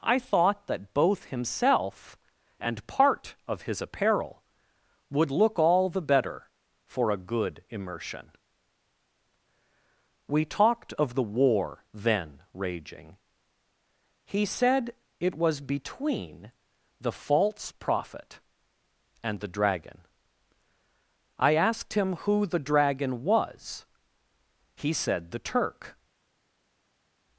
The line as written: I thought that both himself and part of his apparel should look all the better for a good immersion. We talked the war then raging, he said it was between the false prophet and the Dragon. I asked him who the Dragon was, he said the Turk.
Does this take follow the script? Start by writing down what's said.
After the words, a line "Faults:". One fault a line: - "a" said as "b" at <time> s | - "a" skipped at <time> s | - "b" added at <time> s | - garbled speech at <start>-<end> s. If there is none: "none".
I thought that both himself and part of his apparel would look all the better for a good immersion. We talked of the war then raging, he said it was between the false prophet and the Dragon. I asked him who the Dragon was, he said the Turk.
Faults:
- "should" said as "would" at 5.1 s
- "of" added at 10.9 s